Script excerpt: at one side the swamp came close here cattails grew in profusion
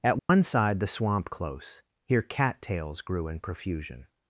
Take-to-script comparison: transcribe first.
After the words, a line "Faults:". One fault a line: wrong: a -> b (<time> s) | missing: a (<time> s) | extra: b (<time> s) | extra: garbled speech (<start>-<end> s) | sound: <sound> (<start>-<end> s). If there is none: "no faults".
at one side the swamp close here cattails grew in profusion
Faults:
sound: dropout (0.2-0.3 s)
missing: came (1.3 s)